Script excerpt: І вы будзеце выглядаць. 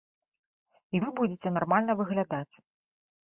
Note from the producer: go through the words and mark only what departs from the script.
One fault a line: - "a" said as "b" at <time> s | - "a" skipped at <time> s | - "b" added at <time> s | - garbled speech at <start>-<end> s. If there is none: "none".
- "нармальна" added at 1.6 s